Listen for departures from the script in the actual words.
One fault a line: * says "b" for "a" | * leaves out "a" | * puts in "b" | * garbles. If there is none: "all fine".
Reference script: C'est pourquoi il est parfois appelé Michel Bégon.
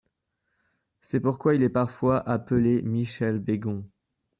all fine